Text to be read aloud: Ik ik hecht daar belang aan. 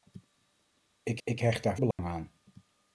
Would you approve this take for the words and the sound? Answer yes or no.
no